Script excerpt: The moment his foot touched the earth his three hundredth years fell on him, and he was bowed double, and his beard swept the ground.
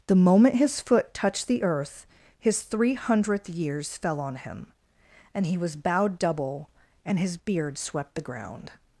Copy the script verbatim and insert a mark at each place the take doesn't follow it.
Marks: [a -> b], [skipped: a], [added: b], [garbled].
The moment his foot touched the earth his three hundredth years fell on him, and he was bowed double, and his beard swept the ground.